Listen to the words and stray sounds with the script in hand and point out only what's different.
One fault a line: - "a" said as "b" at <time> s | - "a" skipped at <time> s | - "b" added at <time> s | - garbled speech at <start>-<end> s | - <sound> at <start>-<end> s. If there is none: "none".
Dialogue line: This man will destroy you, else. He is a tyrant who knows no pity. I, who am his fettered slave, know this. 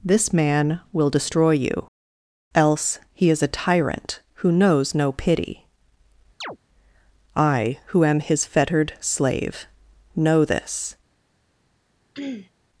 - chirp at 6.4-6.6 s
- throat clearing at 12.1-12.5 s